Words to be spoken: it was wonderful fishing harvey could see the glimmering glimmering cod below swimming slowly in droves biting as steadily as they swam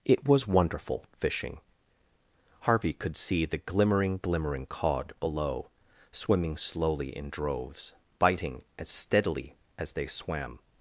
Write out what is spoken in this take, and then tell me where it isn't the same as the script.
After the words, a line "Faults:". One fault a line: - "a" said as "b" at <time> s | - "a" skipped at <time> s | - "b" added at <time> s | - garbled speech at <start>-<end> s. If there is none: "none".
it was wonderful fishing harvey could see the glimmering glimmering cod below swimming slowly in droves biting as steadily as they swam
Faults:
none